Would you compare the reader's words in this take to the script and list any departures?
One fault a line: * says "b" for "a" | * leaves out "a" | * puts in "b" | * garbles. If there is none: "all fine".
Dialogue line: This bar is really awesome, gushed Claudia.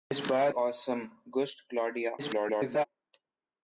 * leaves out "is really"
* garbles